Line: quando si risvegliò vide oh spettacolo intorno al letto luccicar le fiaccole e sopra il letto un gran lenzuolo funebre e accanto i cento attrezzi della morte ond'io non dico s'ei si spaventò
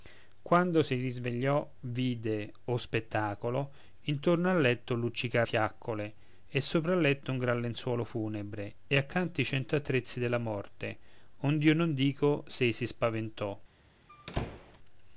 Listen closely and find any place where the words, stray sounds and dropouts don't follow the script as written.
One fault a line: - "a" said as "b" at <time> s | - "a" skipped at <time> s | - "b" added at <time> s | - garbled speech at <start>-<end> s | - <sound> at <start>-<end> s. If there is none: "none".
- "le" skipped at 5.5 s
- squeak at 14.1-14.8 s